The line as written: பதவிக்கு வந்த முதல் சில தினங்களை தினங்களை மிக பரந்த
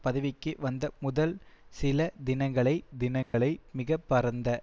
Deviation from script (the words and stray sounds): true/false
true